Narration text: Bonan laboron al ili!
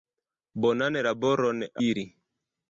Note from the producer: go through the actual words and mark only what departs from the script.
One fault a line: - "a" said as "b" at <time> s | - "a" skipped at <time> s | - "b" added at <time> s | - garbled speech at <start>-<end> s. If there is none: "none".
- "al" skipped at 1.6 s